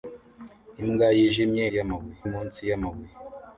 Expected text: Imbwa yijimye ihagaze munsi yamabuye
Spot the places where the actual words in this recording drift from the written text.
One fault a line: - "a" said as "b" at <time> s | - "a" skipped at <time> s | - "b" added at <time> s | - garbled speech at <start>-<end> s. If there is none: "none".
- "ihagaze" said as "yamabuye" at 1.8 s